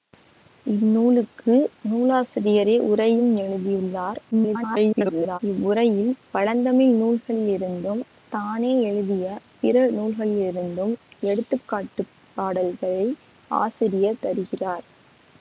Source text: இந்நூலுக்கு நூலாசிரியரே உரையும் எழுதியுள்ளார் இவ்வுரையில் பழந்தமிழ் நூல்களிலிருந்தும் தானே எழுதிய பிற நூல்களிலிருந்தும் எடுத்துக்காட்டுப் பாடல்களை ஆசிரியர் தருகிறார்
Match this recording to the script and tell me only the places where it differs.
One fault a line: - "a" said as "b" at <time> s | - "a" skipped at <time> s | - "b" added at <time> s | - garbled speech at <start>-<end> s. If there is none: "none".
- garbled speech at 4.3-5.4 s